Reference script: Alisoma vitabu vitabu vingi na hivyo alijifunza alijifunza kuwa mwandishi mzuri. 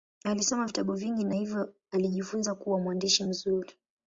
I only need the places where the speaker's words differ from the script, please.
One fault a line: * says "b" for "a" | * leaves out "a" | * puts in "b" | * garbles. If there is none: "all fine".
* leaves out "vitabu"
* leaves out "alijifunza"